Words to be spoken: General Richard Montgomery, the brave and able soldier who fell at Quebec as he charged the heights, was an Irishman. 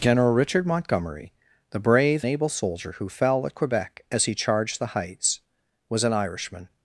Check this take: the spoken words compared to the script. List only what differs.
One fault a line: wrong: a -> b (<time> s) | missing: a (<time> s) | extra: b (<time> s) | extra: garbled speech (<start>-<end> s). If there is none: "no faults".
missing: and (2.2 s)